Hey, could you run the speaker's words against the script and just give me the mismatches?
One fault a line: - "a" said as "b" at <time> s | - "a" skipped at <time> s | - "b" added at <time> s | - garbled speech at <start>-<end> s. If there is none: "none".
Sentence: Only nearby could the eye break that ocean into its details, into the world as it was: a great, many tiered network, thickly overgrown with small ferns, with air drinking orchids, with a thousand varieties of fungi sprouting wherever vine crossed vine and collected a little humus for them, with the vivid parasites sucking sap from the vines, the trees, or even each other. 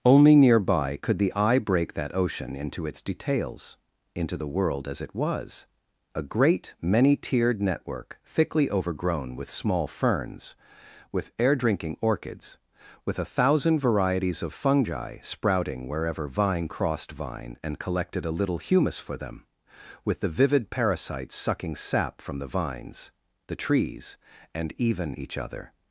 - "or" said as "and" at 24.5 s